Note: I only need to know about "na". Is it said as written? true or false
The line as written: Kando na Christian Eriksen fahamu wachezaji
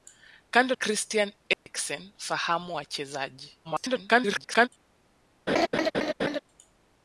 false